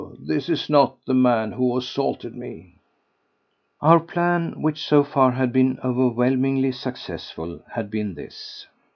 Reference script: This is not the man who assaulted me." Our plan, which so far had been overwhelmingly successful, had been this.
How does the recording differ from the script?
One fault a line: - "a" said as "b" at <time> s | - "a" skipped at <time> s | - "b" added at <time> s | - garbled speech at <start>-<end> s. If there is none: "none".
none